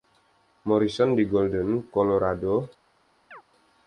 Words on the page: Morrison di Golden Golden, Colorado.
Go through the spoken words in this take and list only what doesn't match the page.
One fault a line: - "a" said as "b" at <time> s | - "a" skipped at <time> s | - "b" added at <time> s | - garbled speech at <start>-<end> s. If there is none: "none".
- "Golden" skipped at 1.9 s